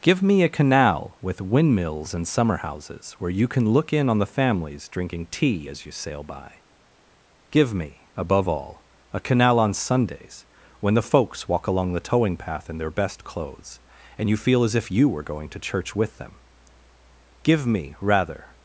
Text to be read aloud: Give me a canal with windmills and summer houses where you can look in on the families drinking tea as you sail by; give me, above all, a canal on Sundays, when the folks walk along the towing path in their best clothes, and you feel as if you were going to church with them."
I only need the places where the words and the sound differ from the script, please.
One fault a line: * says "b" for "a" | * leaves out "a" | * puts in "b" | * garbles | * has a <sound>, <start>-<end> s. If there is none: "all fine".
* puts in "Give me rather"